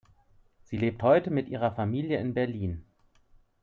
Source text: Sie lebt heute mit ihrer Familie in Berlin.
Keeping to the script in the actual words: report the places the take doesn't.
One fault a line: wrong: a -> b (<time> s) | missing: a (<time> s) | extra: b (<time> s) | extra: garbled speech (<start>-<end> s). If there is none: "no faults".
no faults